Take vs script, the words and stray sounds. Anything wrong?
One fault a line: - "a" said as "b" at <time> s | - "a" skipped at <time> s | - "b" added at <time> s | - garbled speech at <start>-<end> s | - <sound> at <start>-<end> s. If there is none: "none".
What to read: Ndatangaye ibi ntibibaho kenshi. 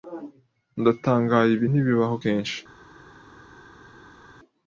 none